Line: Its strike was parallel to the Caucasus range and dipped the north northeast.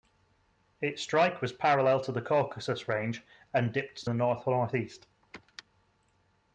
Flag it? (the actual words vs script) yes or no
no